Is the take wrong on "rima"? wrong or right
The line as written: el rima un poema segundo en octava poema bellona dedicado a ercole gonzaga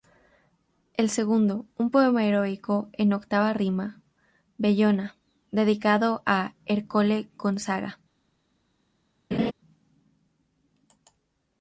wrong